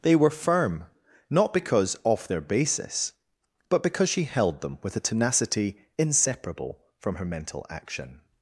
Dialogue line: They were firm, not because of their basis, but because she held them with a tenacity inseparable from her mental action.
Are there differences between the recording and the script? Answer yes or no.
yes